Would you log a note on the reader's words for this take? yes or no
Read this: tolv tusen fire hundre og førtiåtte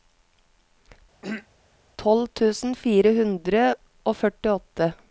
no